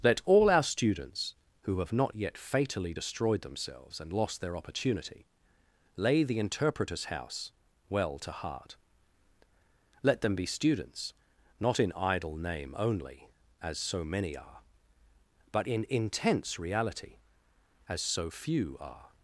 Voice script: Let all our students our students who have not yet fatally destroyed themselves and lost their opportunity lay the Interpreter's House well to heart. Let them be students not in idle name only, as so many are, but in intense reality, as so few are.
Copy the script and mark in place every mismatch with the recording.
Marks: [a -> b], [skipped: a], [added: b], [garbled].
Let all our students [skipped: our students] who have not yet fatally destroyed themselves and lost their opportunity lay the Interpreter's House well to heart. Let them be students not in idle name only, as so many are, but in intense reality, as so few are.